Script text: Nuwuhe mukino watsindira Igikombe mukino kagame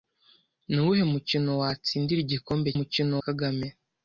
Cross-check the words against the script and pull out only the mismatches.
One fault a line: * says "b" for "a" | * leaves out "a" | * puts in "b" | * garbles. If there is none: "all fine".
all fine